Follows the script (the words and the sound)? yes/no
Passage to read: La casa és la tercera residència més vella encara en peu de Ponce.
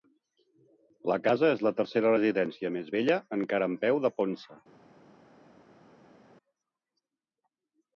yes